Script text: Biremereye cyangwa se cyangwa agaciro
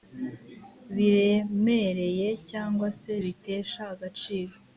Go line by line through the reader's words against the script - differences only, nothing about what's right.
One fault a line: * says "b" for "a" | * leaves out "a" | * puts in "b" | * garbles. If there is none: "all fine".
* says "bitesha" for "cyangwa"